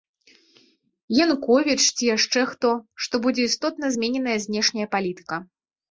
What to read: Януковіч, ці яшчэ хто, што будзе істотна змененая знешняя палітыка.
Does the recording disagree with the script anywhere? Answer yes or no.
no